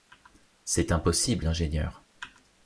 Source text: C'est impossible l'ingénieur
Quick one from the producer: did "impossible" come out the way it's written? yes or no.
yes